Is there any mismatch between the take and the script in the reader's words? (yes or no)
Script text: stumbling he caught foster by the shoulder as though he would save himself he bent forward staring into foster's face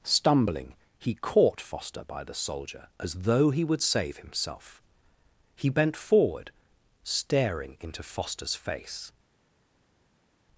yes